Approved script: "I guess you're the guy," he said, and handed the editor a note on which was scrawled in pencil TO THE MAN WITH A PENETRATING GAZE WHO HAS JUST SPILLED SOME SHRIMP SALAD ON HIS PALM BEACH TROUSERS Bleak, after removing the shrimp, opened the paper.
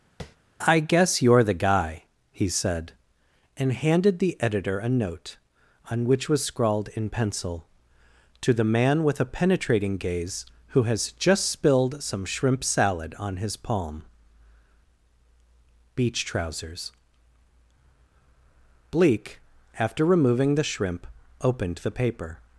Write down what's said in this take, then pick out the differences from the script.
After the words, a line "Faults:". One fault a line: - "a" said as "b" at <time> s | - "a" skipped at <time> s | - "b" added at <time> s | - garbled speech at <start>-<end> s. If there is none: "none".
"I guess you're the guy," he said, and handed the editor a note on which was scrawled in pencil TO THE MAN WITH A PENETRATING GAZE WHO HAS JUST SPILLED SOME SHRIMP SALAD ON HIS PALM BEACH TROUSERS Bleak, after removing the shrimp, opened the paper.
Faults:
none